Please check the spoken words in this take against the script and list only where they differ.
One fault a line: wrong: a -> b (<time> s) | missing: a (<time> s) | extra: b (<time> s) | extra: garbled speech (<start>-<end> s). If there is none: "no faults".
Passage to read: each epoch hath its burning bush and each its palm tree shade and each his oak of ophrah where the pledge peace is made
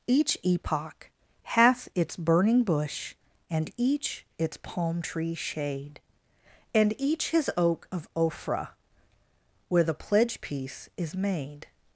no faults